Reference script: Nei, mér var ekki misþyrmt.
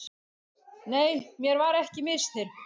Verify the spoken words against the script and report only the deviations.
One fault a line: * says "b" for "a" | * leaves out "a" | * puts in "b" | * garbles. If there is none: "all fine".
all fine